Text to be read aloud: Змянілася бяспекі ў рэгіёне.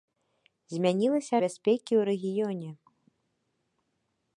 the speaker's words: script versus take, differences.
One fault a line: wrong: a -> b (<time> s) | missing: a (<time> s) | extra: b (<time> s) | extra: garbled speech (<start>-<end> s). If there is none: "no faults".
no faults